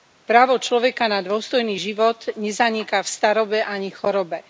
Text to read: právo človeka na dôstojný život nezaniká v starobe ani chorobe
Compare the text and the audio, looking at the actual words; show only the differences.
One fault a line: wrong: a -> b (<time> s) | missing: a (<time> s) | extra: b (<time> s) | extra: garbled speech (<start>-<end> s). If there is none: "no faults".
no faults